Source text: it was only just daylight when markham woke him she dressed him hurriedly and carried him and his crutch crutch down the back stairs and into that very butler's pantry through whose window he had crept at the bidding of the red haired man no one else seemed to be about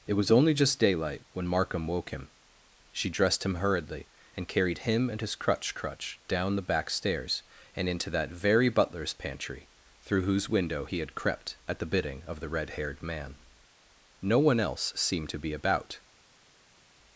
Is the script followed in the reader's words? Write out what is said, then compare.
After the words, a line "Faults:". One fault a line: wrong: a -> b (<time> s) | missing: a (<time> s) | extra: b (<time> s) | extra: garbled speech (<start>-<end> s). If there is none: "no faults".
it was only just daylight when markham woke him she dressed him hurriedly and carried him and his crutch crutch down the back stairs and into that very butler's pantry through whose window he had crept at the bidding of the red haired man no one else seemed to be about
Faults:
no faults